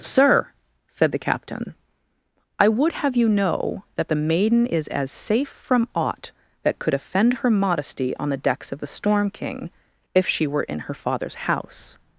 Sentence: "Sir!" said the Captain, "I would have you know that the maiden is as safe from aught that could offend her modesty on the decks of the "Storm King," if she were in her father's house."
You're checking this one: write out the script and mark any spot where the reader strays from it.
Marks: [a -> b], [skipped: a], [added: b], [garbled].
"Sir!" said the Captain, "I would have you know that the maiden is as safe from aught that could offend her modesty on the decks of the "Storm King," if she were in her father's house."